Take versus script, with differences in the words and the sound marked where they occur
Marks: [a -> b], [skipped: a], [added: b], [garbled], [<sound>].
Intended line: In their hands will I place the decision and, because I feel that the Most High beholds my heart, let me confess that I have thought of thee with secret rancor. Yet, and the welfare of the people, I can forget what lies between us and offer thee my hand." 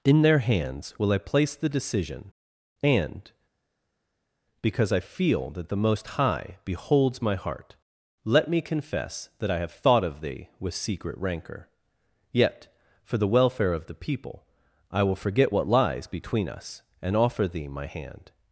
In their hands will I place the decision and, because I feel that the Most High beholds my heart, let me confess that I have thought of thee with secret rancor. Yet, [and -> for] the welfare of the people, I [can -> will] forget what lies between us and offer thee my hand."